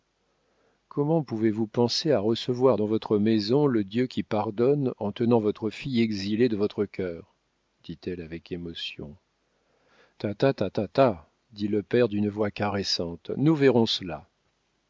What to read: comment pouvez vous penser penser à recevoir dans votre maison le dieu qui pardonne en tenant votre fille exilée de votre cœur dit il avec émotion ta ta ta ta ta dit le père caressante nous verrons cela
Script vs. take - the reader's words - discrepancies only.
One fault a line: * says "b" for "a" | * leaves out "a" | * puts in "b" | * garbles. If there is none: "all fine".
* leaves out "penser"
* says "elle" for "il"
* puts in "d'une voix"